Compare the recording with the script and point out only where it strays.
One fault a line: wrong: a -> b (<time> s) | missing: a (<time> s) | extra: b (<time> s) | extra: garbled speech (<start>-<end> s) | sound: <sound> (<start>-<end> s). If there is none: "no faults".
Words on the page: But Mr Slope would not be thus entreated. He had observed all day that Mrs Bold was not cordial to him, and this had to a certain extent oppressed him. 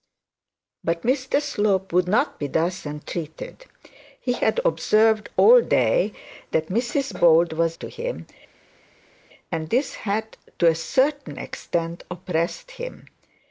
missing: not cordial (7.8 s)